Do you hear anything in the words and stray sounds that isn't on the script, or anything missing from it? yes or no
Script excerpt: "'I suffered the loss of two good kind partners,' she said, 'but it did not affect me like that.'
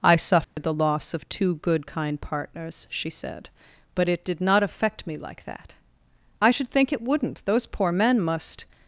yes